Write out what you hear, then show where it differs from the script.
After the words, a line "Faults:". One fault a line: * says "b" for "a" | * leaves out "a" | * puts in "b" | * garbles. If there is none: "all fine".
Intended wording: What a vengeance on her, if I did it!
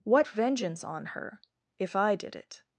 What vengeance on her, if I did it!
Faults:
* leaves out "a"